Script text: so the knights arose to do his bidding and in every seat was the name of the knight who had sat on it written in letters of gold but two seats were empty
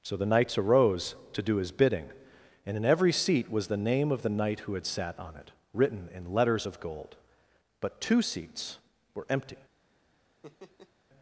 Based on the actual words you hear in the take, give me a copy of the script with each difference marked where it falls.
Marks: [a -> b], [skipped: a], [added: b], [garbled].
so the knights arose to do his bidding and in every seat was the name of the knight who had sat on it written in letters of gold but two seats were empty